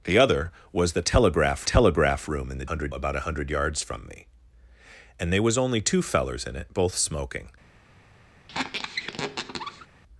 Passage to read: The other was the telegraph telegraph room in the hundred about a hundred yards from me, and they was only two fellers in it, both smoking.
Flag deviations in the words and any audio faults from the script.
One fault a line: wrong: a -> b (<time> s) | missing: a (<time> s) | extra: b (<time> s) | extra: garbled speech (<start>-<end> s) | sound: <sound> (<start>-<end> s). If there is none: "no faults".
sound: squeak (8.5-9.9 s)